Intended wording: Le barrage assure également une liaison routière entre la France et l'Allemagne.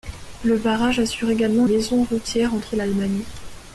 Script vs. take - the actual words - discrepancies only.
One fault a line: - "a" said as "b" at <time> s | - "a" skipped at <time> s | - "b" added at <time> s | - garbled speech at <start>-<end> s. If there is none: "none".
- "une" skipped at 1.7 s
- "la France" skipped at 2.7 s